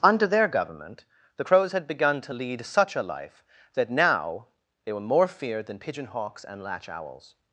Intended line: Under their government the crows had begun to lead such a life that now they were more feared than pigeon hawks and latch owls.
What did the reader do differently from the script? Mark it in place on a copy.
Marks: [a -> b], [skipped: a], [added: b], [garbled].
Under their government the crows had begun to lead such a life that now they were more feared than pigeon hawks and latch owls.